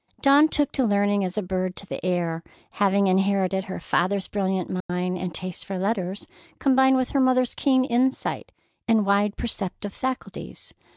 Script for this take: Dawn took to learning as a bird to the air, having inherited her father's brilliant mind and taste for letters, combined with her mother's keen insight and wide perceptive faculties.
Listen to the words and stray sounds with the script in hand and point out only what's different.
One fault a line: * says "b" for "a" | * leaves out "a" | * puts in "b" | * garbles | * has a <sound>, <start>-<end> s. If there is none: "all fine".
* has a dropout, 4.8-4.9 s